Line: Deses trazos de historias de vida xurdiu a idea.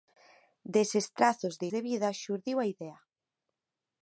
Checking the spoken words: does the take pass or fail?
fail